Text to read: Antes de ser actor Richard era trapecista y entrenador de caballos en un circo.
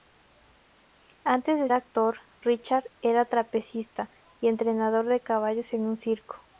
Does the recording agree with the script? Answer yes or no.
no